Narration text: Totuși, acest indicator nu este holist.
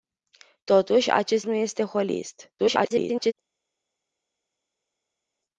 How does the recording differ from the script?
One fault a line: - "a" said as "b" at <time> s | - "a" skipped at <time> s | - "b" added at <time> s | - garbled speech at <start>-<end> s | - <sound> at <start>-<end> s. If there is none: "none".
- "indicator" skipped at 1.5 s
- garbled speech at 2.6-3.3 s